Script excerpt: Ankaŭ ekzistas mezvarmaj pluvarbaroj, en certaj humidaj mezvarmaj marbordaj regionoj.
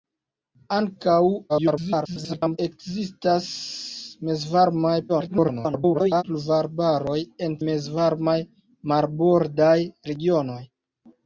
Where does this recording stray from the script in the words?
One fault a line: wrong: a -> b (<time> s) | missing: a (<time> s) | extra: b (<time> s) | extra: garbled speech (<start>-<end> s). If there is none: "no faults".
extra: garbled speech (1.5-2.6 s)
extra: garbled speech (5.1-6.2 s)
missing: certaj humidaj (7.6 s)